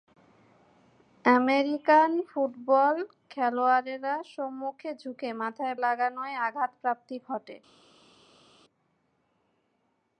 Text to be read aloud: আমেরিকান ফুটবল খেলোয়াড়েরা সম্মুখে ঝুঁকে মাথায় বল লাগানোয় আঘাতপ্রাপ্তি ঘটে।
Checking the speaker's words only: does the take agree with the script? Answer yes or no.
no